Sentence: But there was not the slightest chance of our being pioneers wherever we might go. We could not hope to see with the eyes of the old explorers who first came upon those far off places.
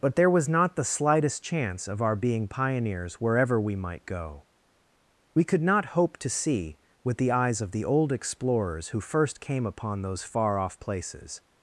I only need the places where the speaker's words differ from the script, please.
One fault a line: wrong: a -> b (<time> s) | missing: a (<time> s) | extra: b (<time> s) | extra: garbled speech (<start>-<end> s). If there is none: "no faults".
no faults